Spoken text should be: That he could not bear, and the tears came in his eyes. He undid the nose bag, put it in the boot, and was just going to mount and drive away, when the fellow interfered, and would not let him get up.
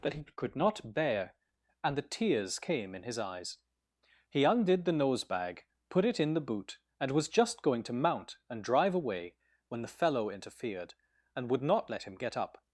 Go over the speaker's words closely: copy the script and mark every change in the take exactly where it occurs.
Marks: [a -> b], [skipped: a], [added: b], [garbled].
That he could not bear, and the tears came in his eyes. He undid the nose bag, put it in the boot, and was just going to mount and drive away, when the fellow interfered, and would not let him get up.